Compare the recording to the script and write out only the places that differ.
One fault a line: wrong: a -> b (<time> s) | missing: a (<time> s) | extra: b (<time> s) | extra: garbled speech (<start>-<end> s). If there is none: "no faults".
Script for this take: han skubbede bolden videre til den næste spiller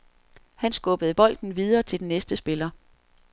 no faults